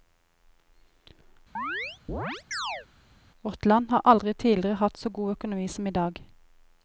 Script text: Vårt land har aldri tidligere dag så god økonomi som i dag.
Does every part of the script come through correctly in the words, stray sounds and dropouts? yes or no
no